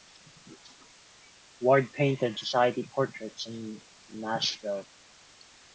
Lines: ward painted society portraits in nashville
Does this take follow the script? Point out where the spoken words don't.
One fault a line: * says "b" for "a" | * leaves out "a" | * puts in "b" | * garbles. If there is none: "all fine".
all fine